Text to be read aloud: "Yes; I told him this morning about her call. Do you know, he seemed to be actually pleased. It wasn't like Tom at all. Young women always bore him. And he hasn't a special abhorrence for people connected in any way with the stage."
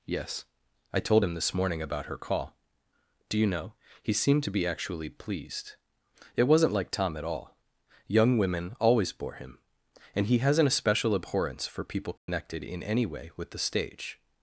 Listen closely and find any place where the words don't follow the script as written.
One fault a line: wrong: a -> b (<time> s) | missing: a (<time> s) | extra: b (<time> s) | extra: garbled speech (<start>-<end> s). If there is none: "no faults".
no faults